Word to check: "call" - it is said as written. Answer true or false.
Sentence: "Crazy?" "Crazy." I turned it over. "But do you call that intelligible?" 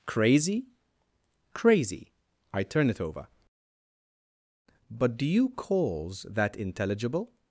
false